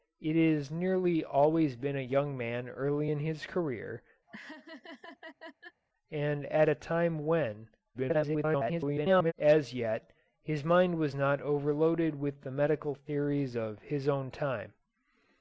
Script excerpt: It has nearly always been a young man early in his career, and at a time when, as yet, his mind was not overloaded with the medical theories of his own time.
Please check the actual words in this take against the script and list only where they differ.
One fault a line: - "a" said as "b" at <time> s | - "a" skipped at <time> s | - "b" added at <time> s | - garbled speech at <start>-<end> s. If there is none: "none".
- garbled speech at 7.9-9.3 s